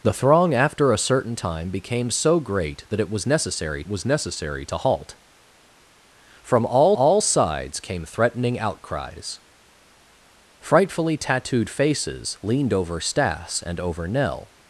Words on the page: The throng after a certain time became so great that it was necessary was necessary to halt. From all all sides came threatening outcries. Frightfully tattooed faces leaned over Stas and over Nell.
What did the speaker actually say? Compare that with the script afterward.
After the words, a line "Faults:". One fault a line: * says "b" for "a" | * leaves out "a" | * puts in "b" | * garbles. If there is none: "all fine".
The throng after a certain time became so great that it was necessary was necessary to halt. From all all sides came threatening outcries. Frightfully tattooed faces leaned over Stas and over Nell.
Faults:
all fine